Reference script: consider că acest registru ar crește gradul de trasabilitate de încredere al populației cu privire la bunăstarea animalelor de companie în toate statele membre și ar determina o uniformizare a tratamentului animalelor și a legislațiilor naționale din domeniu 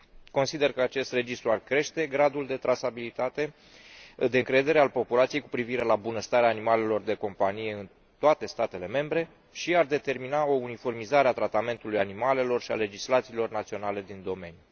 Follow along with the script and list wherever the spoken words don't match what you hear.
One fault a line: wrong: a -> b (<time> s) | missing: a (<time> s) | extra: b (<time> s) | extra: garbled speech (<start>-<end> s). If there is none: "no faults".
no faults